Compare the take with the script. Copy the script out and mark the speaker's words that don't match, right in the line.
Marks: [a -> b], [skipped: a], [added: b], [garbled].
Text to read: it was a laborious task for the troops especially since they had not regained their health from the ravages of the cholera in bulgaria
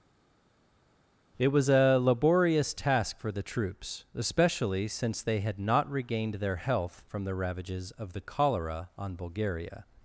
it was a laborious task for the troops especially since they had not regained their health from the ravages of the cholera [in -> on] bulgaria